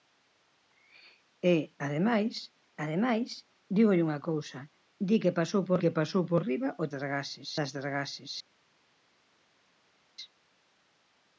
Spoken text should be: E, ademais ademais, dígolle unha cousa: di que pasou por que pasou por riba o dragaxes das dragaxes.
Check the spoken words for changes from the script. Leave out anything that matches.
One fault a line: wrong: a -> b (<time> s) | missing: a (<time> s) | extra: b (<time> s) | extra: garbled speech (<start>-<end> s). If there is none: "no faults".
no faults